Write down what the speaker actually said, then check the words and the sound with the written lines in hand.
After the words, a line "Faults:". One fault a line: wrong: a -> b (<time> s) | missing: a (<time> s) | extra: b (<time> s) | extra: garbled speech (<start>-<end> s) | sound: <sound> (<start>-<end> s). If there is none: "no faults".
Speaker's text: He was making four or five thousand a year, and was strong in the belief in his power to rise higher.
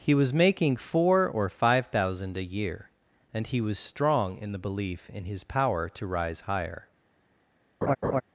He was making four or five thousand a year, and he was strong in the belief in his power to rise higher.
Faults:
extra: he (3.5 s)
sound: laugh (7.8-8.2 s)